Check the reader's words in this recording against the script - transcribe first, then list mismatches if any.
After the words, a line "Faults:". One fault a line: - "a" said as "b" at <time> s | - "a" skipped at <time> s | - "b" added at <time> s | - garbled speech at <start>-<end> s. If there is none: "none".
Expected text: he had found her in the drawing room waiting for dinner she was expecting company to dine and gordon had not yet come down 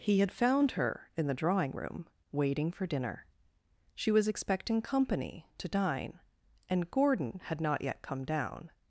he had found her in the drawing room waiting for dinner she was expecting company to dine and gordon had not yet come down
Faults:
none